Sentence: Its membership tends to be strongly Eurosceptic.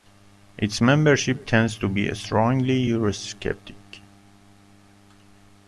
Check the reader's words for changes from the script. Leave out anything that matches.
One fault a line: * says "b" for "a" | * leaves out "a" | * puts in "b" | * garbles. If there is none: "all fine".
all fine